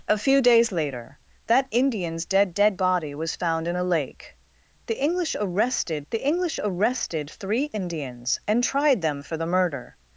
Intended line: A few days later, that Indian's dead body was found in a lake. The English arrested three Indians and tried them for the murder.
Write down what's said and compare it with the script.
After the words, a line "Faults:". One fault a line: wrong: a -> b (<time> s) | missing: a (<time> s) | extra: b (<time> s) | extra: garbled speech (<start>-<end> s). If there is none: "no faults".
A few days later, that Indian's dead dead body was found in a lake. The English arrested the English arrested three Indians and tried them for the murder.
Faults:
extra: dead (2.5 s)
extra: the English arrested (6.1 s)